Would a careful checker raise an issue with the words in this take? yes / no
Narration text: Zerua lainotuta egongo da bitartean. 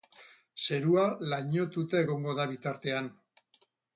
no